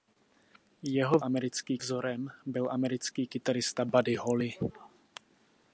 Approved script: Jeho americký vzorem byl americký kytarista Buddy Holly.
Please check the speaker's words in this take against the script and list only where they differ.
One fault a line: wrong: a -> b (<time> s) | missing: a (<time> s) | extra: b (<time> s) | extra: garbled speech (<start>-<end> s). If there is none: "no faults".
no faults